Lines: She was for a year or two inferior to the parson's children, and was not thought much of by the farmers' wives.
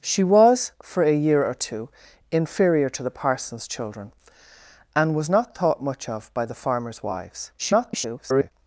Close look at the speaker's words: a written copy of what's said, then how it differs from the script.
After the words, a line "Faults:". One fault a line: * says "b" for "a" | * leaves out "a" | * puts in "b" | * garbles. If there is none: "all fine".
She was for a year or two inferior to the parson's children, and was not thought much of by the farmers' wives. [garbled]
Faults:
* garbles